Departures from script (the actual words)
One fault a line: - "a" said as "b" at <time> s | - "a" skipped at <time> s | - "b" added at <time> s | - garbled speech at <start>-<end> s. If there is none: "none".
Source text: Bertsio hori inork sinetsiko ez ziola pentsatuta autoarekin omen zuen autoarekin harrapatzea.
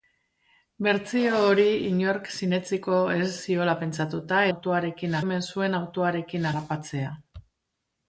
none